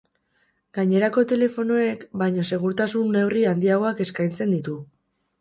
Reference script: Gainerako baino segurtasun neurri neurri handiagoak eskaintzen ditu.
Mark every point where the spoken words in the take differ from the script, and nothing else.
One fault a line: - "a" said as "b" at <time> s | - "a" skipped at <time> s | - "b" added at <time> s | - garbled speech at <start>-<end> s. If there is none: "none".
- "telefonoek" added at 1.3 s
- "neurri" skipped at 3.5 s